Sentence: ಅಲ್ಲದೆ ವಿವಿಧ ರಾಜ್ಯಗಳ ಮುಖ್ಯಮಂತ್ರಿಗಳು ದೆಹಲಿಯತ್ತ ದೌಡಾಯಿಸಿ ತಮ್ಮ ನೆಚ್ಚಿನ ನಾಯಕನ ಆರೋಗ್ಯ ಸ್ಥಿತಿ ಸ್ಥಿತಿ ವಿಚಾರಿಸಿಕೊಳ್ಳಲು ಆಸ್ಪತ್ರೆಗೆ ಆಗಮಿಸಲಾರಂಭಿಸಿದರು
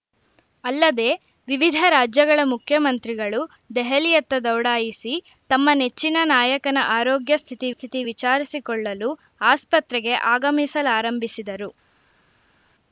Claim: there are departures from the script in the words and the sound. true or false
false